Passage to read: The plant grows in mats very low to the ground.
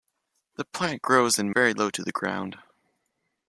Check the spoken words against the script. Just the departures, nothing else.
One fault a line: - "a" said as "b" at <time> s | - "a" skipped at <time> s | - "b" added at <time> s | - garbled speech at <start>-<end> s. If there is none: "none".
- "mats" skipped at 1.5 s